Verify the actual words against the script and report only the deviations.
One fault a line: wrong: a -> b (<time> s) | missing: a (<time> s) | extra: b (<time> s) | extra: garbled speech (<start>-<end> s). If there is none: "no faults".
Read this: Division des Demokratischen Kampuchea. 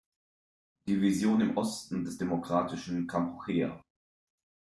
extra: im Osten (1.4 s)